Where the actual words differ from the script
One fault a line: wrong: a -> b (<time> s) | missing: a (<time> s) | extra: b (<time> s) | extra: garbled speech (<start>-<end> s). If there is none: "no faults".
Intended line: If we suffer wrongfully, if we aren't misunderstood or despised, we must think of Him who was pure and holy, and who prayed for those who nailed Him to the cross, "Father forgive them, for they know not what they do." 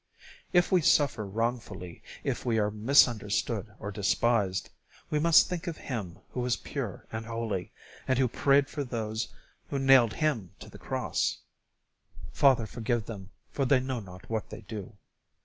wrong: aren't -> are (2.6 s)